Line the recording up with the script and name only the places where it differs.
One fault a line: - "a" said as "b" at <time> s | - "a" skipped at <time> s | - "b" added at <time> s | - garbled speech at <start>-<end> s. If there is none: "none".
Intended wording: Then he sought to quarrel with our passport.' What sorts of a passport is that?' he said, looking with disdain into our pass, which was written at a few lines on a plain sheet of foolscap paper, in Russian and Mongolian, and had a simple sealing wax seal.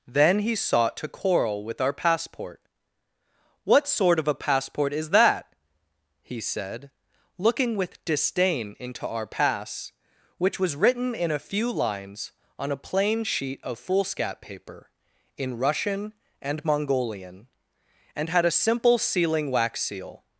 - "sorts" said as "sort" at 3.9 s
- "at" said as "in" at 11.1 s